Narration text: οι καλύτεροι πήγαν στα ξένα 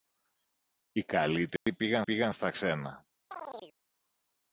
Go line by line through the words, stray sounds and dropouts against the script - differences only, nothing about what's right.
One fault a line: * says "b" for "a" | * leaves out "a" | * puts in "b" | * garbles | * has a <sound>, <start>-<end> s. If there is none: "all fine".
* has a dropout, 1.6-1.7 s
* puts in "πήγαν"
* has a chirp, 3.3-3.7 s